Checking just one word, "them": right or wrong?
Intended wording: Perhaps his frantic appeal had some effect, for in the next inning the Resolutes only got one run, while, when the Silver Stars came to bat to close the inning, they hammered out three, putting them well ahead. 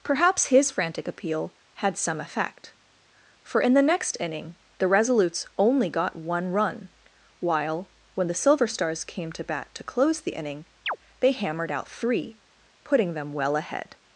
right